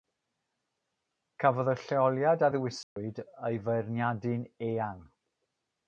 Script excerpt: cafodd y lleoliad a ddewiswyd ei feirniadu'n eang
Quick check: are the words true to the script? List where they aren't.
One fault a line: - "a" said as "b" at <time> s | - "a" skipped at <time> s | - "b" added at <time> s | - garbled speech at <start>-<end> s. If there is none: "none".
none